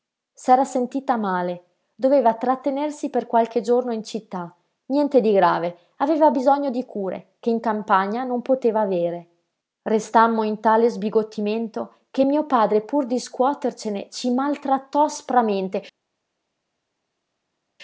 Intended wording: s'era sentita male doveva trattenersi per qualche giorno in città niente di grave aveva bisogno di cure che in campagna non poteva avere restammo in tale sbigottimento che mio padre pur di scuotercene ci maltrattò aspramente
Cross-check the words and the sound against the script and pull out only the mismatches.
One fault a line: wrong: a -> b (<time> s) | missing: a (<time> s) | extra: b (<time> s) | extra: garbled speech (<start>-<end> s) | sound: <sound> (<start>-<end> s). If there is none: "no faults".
no faults